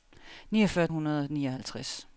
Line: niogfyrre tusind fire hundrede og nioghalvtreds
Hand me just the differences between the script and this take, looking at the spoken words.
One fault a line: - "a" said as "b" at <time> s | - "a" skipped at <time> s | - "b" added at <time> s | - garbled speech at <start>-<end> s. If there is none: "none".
- "tusind fire" skipped at 0.9 s